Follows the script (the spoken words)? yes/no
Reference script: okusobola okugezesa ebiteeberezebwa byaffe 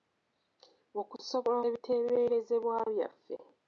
no